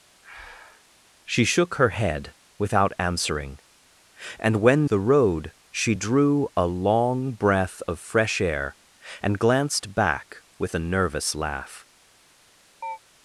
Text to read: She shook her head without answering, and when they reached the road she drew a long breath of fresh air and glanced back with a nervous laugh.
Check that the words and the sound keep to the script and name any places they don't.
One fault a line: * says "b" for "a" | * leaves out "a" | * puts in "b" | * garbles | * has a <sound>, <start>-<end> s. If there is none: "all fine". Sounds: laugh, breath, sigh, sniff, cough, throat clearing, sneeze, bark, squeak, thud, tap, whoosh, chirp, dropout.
* has a breath, 0.2-0.9 s
* leaves out "they reached"
* has a chirp, 12.8-13.0 s